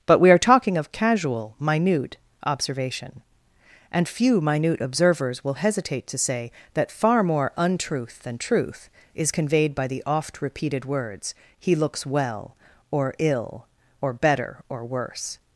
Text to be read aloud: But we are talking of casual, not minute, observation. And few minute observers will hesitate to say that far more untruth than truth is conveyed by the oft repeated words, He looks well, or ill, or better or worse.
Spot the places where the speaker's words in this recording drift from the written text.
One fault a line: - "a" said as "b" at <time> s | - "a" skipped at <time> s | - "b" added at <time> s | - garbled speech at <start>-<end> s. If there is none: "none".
- "not" skipped at 1.6 s